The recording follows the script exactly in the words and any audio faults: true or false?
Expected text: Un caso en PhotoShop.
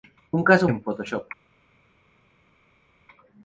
true